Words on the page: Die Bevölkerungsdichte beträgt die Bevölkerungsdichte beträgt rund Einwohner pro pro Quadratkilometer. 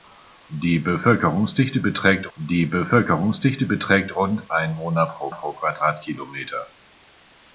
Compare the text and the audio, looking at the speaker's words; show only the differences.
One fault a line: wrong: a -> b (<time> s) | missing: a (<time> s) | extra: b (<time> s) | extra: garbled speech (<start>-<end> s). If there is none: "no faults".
no faults